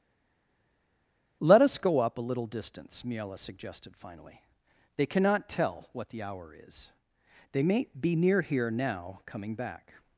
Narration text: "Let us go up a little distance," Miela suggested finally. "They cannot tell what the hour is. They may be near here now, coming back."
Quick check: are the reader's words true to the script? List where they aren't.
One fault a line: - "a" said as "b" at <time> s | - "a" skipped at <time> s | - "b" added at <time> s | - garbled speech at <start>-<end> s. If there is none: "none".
none